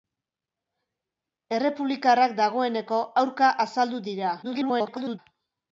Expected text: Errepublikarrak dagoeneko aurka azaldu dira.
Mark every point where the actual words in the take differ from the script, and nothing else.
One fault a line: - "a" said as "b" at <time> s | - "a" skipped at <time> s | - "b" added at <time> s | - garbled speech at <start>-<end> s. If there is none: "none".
- garbled speech at 4.4-5.2 s